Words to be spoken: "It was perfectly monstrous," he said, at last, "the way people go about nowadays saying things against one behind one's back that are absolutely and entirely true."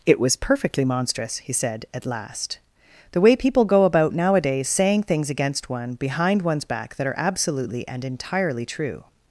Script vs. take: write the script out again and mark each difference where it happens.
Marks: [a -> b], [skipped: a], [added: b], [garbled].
"It was perfectly monstrous," he said, at last, "the way people go about nowadays saying things against one behind one's back that are absolutely and entirely true."